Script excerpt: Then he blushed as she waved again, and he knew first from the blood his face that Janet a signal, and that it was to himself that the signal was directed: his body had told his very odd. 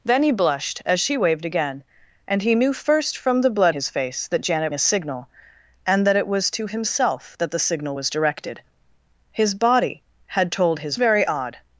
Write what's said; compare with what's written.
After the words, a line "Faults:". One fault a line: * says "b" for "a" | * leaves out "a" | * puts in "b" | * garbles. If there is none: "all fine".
Then he blushed as she waved again, and he knew first from the blood his face that Janet a signal, and that it was to himself that the signal was directed: his body had told his very odd.
Faults:
all fine